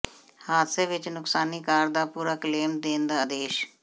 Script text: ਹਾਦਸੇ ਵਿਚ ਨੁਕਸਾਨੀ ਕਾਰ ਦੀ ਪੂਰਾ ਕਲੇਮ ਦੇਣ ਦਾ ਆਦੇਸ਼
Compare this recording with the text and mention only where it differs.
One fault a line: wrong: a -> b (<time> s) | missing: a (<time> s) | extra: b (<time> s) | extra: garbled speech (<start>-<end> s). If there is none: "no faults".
wrong: ਦੀ -> ਦਾ (1.9 s)